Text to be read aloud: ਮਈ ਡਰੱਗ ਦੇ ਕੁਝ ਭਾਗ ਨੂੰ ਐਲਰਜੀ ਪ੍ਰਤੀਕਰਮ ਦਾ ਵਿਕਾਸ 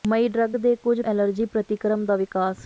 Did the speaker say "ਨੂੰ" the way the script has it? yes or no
no